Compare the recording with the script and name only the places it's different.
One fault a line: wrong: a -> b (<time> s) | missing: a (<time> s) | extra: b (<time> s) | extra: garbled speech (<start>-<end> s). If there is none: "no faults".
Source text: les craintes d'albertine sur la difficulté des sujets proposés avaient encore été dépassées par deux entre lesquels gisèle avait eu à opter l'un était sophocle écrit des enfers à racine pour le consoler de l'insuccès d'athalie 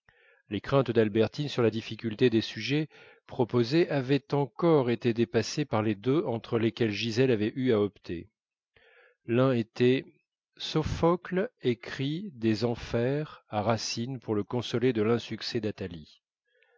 extra: les (5.8 s)